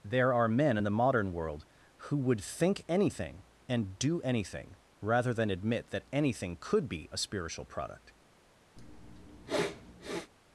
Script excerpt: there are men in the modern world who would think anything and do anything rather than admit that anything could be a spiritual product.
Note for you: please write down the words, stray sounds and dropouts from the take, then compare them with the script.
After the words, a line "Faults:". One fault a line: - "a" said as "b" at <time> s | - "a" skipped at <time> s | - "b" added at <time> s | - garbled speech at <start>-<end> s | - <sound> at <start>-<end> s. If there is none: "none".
there are men in the modern world who would think anything and do anything rather than admit that anything could be a spiritual product.
Faults:
- sniff at 8.8-10.3 s